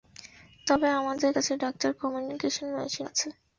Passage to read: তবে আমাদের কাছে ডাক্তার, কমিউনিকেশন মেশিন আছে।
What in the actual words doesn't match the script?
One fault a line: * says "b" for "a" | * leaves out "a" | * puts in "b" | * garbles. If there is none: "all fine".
all fine